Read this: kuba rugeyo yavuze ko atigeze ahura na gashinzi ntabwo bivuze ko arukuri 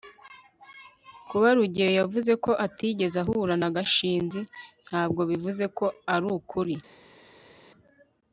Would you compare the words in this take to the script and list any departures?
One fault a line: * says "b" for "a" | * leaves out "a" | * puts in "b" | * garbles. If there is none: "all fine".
all fine